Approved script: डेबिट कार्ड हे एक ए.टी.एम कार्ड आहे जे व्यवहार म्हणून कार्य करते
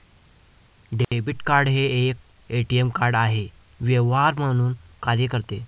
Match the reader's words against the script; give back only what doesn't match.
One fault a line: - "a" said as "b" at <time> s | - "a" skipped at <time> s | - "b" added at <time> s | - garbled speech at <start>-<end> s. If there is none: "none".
- "जे" skipped at 3.5 s